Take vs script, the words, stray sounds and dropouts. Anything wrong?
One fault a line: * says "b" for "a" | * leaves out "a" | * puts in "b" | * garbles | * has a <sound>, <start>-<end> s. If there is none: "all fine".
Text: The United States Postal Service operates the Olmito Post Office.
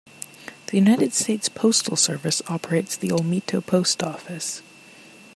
all fine